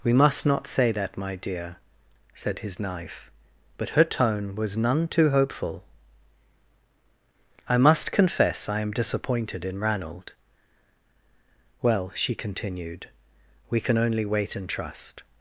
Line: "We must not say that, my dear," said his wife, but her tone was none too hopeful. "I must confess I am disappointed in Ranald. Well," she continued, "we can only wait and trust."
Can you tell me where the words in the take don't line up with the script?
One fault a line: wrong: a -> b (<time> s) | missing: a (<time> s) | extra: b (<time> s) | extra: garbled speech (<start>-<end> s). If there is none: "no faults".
wrong: wife -> knife (2.8 s)